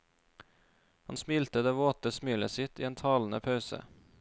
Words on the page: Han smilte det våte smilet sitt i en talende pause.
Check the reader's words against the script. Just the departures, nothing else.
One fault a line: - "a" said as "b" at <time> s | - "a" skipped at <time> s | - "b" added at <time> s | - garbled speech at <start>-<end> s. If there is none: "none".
none